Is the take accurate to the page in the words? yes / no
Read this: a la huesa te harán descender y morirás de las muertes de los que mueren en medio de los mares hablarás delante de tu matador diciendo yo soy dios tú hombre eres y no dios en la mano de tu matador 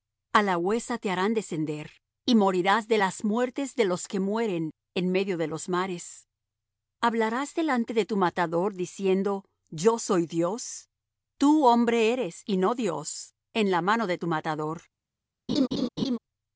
yes